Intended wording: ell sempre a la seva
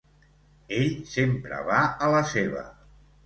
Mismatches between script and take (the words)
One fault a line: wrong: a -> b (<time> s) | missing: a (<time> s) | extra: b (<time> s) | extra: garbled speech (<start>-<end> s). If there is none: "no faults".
extra: va (1.7 s)